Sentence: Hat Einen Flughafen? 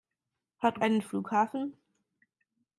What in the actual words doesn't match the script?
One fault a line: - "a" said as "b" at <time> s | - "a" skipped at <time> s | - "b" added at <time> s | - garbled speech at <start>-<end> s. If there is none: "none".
none